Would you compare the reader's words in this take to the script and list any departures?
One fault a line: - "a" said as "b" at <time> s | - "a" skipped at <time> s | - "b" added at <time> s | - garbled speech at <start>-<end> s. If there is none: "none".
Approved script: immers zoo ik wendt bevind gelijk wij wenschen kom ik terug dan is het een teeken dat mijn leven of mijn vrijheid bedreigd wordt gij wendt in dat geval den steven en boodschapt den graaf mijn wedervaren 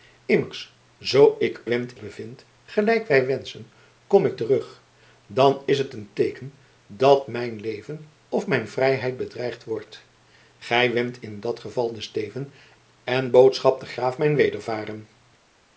none